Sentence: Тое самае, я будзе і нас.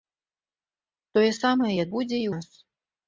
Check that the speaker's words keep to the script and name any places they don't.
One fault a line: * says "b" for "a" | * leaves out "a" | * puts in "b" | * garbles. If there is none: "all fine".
all fine